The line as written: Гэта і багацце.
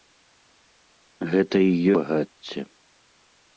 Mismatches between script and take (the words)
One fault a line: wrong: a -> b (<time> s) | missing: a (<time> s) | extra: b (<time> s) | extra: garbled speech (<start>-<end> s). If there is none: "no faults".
no faults